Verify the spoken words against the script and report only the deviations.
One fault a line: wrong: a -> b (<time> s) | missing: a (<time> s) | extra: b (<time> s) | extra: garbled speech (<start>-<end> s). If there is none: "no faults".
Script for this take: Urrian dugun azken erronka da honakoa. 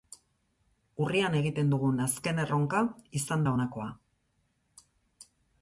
extra: egiten (1.4 s)
extra: izan (3.2 s)